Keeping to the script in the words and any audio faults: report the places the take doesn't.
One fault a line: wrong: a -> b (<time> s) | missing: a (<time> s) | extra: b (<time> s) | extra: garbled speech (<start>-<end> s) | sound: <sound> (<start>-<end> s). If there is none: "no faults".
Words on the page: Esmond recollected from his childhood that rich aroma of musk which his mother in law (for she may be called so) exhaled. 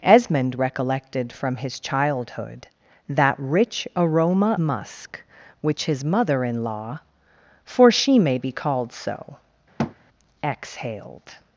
missing: of (4.6 s)
sound: thud (9.8-10.0 s)